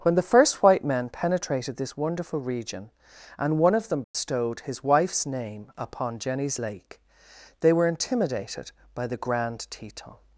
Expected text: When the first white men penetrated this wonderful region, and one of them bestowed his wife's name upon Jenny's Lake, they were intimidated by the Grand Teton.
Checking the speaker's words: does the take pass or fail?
pass